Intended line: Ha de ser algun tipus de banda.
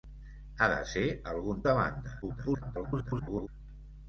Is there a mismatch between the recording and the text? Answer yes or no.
yes